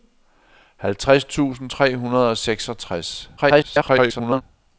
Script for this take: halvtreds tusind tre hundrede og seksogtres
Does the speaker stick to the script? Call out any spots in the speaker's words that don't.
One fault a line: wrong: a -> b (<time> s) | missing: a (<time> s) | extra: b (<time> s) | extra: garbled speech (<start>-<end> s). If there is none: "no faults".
extra: garbled speech (3.4-4.4 s)